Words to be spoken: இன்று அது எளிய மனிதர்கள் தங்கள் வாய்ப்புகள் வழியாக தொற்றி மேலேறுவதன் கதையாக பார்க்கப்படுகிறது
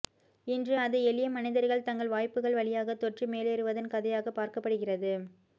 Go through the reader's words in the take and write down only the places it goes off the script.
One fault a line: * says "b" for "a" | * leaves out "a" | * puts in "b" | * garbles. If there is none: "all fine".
all fine